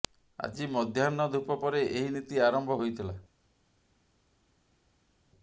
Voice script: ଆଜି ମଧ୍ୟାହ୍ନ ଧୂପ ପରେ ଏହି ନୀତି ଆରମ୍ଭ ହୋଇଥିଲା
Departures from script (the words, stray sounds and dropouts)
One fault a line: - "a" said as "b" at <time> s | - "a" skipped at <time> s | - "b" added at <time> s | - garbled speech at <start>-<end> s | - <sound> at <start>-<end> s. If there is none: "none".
none